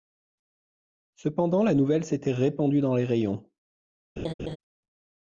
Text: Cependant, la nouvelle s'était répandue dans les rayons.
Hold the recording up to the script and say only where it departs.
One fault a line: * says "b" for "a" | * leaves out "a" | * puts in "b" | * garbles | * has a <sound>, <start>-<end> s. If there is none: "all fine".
* has a laugh, 4.2-4.6 s